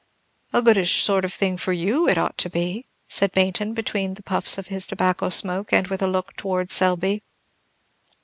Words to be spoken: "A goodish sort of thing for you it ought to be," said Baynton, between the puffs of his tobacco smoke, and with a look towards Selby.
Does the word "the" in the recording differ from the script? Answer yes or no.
no